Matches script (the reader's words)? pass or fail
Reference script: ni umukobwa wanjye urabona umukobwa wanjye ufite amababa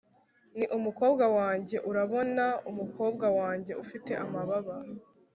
pass